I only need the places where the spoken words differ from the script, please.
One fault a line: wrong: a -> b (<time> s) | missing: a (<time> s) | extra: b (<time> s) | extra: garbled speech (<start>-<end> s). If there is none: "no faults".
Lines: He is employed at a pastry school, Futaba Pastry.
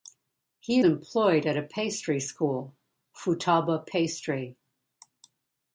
missing: is (0.8 s)